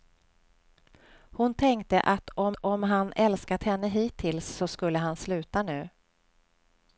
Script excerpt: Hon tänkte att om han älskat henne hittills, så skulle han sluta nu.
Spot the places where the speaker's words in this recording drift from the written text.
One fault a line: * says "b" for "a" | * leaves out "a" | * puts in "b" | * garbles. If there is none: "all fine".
* puts in "om"